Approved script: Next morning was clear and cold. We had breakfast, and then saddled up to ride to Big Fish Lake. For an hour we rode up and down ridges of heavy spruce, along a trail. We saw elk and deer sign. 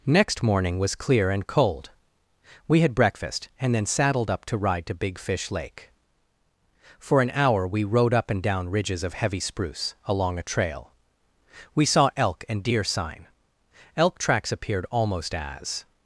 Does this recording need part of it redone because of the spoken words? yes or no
yes